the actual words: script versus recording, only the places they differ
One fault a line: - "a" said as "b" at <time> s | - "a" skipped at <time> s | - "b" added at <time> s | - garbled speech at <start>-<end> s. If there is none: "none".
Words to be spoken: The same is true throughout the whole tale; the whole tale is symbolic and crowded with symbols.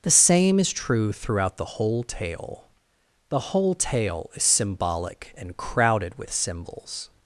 none